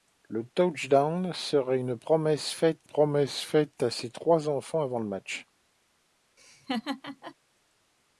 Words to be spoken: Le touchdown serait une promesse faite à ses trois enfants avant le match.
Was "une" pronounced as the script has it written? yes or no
yes